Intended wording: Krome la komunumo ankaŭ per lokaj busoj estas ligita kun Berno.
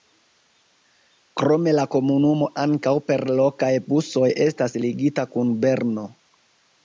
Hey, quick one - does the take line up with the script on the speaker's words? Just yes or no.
yes